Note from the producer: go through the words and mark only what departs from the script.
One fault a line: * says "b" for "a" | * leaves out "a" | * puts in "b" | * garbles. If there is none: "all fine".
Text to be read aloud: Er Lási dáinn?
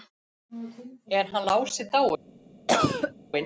* puts in "hann"